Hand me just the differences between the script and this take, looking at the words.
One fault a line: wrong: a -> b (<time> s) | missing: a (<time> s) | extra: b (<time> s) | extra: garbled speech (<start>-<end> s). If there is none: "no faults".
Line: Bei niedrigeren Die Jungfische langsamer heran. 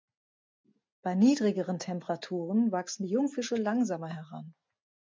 extra: Temperaturen wachsen (1.8 s)